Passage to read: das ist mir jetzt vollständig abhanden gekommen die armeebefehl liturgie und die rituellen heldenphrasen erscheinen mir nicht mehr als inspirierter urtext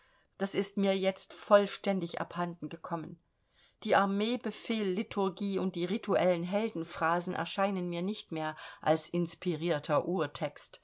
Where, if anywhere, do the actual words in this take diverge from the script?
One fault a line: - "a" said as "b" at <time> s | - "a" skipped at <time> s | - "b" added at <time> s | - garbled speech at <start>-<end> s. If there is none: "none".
none